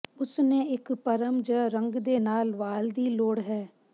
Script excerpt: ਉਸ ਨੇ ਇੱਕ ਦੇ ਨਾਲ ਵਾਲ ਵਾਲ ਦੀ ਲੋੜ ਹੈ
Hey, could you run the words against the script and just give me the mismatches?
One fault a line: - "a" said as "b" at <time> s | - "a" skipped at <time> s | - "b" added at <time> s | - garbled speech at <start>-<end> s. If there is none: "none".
- "ਪਰ੍ਮ ਜ ਰੰਗ" added at 0.9 s
- "ਵਾਲ" skipped at 2.9 s